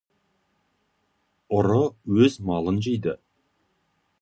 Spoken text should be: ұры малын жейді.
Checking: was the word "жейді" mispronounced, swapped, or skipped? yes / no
no